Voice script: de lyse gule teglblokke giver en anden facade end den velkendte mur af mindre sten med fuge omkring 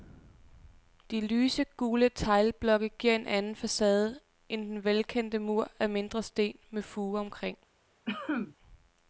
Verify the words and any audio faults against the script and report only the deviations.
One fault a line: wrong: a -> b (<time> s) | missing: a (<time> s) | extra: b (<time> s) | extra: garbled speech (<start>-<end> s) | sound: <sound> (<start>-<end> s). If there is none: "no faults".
sound: cough (8.1-8.6 s)